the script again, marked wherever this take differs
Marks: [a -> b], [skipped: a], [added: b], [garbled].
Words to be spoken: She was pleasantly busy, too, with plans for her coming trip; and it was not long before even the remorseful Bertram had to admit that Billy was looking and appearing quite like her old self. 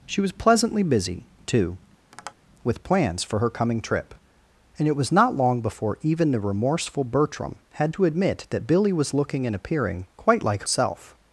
She was pleasantly busy, too, with plans for her coming trip; and it was not long before even the remorseful Bertram had to admit that Billy was looking and appearing quite like [skipped: her old] self.